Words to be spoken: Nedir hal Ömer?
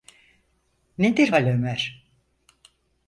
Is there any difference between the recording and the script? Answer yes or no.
no